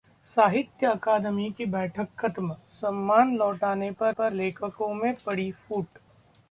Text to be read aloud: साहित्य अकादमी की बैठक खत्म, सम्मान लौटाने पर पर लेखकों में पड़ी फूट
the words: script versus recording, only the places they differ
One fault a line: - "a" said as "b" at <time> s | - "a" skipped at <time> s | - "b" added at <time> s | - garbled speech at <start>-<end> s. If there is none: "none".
none